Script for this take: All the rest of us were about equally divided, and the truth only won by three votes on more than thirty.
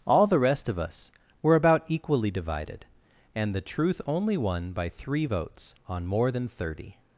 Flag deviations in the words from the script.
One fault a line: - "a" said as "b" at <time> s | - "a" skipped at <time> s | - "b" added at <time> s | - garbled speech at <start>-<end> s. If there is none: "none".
none